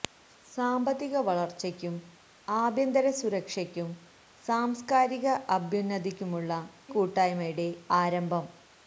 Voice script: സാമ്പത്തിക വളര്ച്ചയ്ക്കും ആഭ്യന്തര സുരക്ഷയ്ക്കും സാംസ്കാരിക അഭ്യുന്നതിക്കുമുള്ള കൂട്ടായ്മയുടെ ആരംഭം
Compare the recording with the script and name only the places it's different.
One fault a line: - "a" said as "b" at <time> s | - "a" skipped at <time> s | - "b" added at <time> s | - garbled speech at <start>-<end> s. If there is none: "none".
none